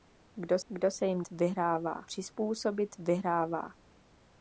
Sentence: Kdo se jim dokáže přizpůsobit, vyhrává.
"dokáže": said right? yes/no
no